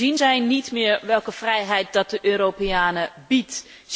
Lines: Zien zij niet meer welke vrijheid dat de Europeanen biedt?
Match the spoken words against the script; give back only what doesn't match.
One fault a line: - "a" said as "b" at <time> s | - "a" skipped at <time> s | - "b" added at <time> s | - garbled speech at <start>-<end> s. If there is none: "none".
none